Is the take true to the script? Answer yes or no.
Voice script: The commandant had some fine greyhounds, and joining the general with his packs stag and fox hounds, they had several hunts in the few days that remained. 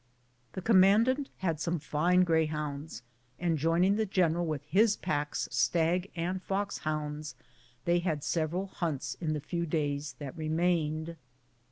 yes